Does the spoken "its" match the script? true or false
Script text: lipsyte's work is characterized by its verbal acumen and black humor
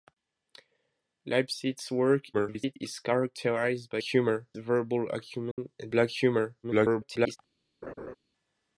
false